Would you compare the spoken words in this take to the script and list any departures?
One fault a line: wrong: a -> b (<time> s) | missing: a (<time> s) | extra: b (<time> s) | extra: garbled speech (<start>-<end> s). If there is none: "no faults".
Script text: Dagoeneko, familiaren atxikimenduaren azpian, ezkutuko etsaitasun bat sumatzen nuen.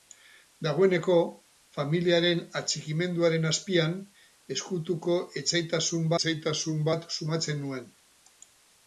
extra: etsaitasun (6.2 s)